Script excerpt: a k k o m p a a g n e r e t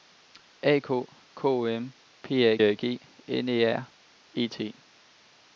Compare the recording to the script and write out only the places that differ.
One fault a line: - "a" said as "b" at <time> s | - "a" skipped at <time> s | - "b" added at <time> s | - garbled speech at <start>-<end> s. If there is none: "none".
none